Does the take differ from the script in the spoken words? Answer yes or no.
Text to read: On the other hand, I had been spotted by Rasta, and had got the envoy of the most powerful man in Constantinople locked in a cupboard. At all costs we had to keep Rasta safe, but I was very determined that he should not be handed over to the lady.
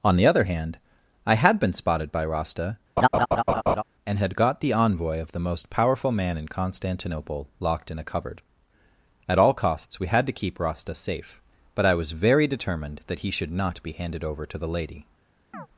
no